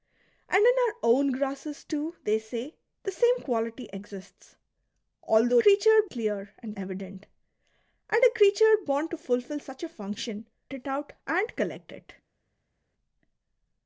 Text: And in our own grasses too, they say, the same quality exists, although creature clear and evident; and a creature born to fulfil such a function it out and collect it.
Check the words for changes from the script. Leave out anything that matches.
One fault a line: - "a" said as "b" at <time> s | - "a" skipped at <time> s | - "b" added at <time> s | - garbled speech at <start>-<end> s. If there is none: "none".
none